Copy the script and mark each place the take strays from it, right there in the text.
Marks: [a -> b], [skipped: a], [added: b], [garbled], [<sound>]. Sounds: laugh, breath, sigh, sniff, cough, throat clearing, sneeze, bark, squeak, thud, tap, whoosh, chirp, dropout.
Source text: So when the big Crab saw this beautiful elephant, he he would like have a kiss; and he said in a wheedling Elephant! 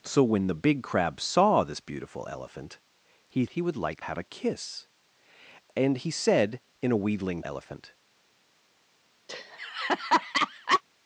So when the big Crab saw this beautiful elephant, he he would like have a kiss; and he said in a wheedling Elephant! [laugh]